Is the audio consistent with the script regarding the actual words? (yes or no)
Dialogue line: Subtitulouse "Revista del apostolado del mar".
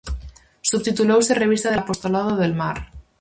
yes